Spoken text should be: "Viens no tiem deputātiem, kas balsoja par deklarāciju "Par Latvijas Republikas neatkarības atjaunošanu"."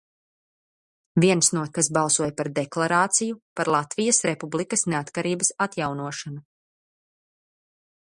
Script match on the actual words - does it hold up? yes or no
no